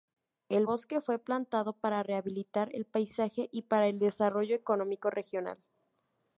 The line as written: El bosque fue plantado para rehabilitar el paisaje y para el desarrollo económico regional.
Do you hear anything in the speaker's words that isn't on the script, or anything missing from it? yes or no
no